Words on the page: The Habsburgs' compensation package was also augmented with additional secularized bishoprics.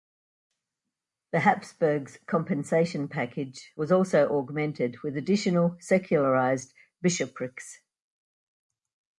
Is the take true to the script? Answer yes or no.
yes